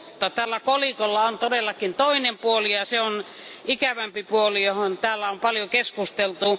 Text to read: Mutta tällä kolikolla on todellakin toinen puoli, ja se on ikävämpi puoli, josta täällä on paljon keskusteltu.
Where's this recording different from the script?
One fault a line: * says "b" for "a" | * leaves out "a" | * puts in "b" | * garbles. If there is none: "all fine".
all fine